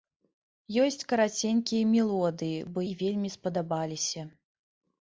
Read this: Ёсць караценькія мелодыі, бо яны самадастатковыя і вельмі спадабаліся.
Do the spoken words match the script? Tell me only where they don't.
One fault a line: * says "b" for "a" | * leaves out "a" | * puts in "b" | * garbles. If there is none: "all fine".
* leaves out "яны самадастатковыя"